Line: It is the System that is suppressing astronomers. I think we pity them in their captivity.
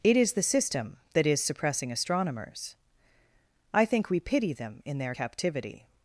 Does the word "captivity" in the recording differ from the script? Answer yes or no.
no